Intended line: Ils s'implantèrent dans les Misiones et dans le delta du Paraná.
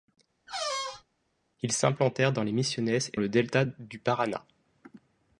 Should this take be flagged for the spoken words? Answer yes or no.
yes